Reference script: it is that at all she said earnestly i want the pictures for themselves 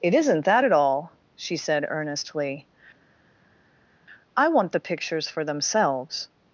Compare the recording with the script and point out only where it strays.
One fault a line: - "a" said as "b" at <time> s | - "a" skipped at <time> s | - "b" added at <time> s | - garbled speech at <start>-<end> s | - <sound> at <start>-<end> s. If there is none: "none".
- "is" said as "isn't" at 0.1 s